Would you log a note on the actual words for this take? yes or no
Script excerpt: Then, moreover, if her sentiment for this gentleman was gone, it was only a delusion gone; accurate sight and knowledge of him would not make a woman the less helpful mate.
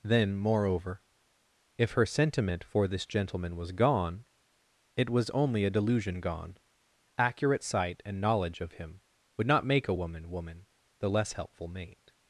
yes